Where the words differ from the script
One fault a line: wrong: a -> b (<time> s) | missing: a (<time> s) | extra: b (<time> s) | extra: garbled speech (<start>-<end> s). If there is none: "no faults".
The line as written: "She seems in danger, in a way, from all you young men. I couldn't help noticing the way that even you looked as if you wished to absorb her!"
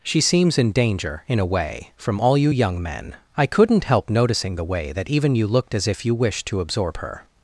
no faults